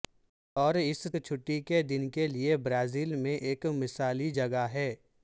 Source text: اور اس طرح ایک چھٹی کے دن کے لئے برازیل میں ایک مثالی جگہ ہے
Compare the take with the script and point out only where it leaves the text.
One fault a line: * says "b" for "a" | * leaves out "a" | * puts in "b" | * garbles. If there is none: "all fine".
* leaves out "طرح ایک"